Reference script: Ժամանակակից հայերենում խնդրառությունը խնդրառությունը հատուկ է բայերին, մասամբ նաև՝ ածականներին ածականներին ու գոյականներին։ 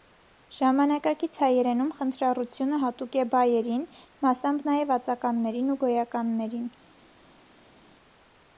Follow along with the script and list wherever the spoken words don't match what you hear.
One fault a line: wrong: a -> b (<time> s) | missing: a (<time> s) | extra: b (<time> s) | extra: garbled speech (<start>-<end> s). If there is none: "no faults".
missing: խնդրառությունը (2.8 s)
missing: ածականներին (5.7 s)